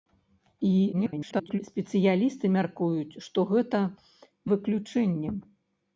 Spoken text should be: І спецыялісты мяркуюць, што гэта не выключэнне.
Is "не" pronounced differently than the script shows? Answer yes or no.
yes